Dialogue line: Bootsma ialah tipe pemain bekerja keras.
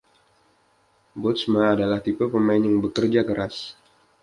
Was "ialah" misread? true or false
true